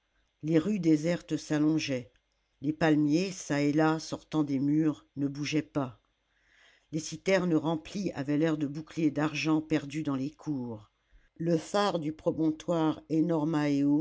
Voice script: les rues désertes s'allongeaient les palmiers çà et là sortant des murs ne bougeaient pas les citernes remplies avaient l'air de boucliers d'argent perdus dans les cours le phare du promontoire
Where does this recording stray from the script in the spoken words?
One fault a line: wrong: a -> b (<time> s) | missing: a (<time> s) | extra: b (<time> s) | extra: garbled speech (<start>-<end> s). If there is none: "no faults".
no faults